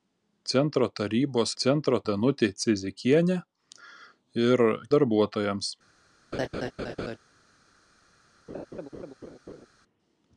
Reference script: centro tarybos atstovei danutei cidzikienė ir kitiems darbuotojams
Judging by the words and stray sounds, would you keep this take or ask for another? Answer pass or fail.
fail